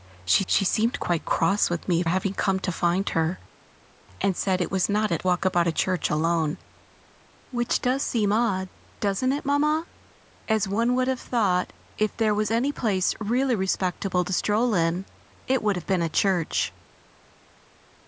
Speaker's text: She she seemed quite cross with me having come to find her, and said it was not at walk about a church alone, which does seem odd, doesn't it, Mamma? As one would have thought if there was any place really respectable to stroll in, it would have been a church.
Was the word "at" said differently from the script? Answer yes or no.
no